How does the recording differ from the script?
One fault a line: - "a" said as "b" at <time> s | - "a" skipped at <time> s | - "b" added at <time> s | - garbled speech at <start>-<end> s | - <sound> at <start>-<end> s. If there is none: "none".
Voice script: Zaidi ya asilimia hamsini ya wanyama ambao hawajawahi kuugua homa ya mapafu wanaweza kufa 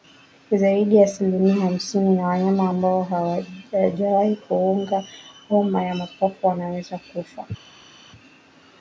none